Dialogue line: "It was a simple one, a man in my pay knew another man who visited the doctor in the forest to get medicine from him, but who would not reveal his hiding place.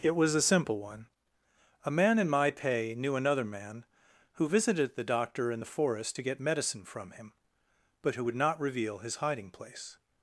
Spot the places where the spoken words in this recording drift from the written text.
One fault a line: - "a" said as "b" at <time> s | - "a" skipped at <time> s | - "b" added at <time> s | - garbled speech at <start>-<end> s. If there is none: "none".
none